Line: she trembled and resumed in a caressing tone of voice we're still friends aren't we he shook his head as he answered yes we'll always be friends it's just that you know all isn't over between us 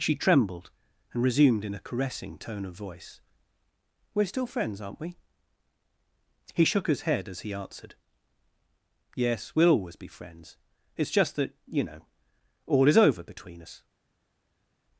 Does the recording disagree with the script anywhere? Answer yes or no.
yes